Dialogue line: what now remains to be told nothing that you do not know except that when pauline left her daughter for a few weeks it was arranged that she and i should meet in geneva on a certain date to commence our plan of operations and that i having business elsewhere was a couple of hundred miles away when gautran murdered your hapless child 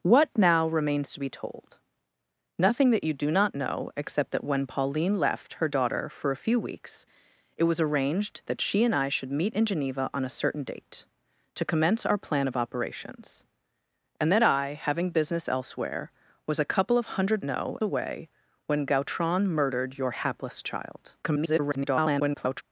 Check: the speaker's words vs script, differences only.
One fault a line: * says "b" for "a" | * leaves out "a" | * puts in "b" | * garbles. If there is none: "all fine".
* says "know" for "miles"
* garbles